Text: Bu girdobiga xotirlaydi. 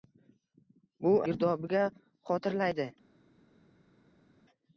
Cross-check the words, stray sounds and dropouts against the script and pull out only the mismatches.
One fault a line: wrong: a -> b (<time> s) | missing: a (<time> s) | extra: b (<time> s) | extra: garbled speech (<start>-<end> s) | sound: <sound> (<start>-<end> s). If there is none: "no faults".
no faults